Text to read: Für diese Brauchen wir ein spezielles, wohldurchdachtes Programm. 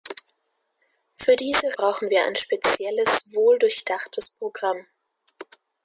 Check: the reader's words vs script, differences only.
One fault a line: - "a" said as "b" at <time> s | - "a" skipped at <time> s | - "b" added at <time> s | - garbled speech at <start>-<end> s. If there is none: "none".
none